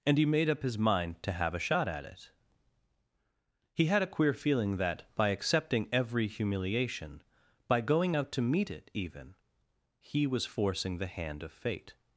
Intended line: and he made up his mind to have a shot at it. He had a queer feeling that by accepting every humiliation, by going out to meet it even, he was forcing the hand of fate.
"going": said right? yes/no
yes